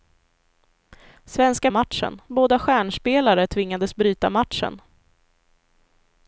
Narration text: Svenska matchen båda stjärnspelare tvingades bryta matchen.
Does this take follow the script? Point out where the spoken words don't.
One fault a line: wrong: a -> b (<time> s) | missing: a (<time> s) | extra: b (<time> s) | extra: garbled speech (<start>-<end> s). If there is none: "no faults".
no faults